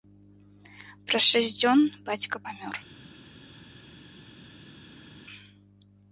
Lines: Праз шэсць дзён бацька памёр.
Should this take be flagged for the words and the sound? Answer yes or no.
no